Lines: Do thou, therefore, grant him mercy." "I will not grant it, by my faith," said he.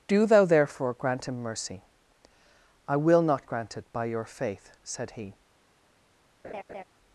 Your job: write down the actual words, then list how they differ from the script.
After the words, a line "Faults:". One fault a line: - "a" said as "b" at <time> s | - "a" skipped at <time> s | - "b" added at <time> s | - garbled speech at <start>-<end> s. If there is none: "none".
Do thou, therefore, grant him mercy." "I will not grant it, by your faith," said he.
Faults:
- "my" said as "your" at 4.1 s